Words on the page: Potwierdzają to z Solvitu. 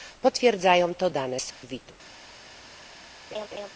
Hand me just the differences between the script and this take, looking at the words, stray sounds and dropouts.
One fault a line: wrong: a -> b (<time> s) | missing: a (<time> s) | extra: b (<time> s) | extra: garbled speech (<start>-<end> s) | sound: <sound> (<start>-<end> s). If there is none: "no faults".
extra: dane (1.1 s)
sound: dropout (1.5-1.6 s)
sound: laugh (3.3-3.7 s)